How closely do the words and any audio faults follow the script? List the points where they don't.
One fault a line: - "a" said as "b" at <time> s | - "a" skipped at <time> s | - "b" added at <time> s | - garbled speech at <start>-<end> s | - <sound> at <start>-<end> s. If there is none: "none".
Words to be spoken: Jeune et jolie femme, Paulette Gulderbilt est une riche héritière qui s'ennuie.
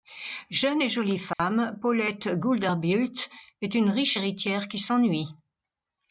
- dropout at 1.3-1.4 s